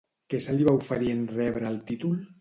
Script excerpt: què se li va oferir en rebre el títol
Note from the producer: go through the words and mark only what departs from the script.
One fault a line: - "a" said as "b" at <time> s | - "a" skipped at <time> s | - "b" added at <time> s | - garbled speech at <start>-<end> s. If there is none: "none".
none